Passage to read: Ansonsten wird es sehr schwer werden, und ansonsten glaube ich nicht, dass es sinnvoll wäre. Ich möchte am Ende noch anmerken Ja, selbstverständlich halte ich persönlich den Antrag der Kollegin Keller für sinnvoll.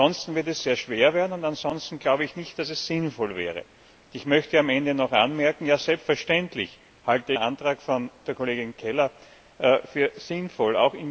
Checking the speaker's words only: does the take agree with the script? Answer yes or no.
no